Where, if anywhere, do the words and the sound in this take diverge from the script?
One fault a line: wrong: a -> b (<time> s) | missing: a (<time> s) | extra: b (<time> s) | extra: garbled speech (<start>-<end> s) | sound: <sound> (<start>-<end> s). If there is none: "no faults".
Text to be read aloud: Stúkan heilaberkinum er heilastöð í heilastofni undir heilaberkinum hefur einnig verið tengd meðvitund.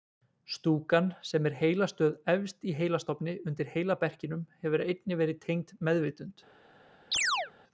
wrong: heilaberkinum -> sem (1.3 s)
extra: efst (2.3 s)
sound: chirp (7.1-7.5 s)